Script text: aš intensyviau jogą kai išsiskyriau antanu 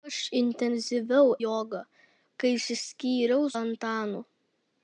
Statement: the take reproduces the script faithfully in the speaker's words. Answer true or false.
true